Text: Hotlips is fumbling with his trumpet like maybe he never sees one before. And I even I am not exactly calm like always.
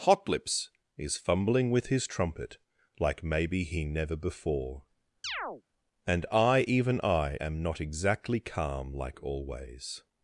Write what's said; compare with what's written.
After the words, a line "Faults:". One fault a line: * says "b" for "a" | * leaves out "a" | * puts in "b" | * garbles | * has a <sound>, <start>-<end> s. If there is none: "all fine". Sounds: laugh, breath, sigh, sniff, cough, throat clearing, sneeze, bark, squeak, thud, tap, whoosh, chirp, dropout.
Hotlips is fumbling with his trumpet like maybe he never before. And I even I am not exactly calm like always.
Faults:
* leaves out "sees one"
* has a chirp, 5.2-5.6 s